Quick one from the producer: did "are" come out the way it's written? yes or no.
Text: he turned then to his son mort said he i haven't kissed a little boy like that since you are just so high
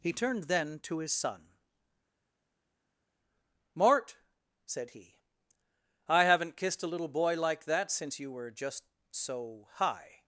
no